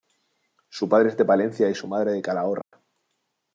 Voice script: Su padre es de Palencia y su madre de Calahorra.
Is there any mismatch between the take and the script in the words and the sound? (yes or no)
yes